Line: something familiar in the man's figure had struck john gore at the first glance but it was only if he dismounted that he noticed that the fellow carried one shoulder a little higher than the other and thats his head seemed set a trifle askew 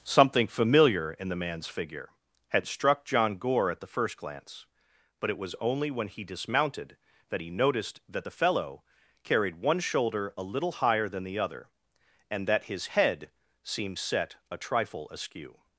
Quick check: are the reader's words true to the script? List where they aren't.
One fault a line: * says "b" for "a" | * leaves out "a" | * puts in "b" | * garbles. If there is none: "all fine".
* says "when" for "if"
* says "that" for "thats"